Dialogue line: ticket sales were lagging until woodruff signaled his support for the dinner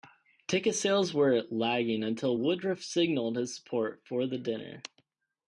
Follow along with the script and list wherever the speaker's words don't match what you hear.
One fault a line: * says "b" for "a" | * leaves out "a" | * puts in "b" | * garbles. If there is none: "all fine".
all fine